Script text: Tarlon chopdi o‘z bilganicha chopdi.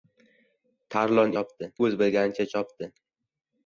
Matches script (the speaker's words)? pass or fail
pass